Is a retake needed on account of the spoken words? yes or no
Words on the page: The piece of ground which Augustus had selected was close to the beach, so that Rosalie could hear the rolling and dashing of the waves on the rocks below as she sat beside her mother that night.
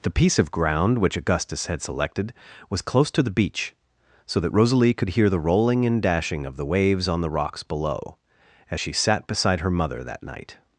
no